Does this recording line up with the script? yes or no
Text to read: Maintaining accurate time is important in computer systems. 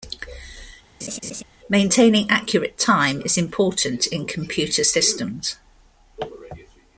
yes